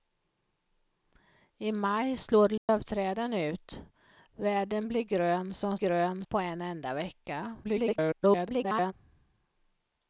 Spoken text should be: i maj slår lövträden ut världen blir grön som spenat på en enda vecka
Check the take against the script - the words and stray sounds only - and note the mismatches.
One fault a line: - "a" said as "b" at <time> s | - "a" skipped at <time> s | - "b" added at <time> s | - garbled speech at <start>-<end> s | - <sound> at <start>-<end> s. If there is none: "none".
- dropout at 2.6-2.7 s
- "spenat" said as "grön" at 5.7 s
- garbled speech at 7.6-8.9 s